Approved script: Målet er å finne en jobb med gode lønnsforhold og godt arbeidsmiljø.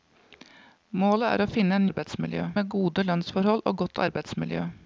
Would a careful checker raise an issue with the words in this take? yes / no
yes